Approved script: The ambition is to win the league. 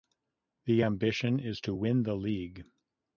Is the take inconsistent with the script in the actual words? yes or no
no